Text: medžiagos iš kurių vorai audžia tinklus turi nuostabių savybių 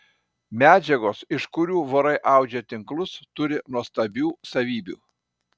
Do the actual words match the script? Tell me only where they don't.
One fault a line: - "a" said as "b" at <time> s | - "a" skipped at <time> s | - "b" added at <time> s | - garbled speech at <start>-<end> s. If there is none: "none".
none